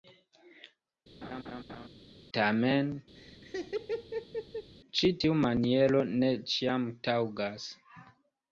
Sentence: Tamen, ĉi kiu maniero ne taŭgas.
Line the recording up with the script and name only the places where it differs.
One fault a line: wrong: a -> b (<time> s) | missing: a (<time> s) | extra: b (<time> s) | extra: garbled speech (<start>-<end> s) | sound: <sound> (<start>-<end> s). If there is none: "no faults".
sound: laugh (1.2-1.9 s)
sound: laugh (3.1-4.7 s)
wrong: kiu -> tiu (5.2 s)
extra: ĉiam (6.5 s)